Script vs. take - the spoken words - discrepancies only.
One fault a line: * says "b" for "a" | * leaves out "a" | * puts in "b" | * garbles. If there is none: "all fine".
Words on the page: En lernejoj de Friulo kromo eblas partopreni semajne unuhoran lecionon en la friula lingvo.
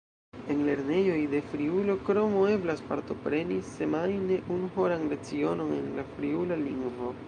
all fine